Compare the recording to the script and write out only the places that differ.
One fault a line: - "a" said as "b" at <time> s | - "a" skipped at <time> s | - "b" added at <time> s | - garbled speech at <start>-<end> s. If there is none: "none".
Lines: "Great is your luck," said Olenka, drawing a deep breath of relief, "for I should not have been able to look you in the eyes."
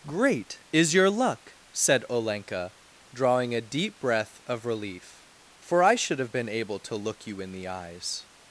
- "not" skipped at 6.2 s